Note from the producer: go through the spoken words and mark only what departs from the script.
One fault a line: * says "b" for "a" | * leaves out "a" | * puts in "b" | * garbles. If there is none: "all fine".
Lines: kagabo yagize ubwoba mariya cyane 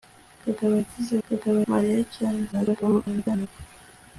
* says "kagabo" for "ubwoba"
* garbles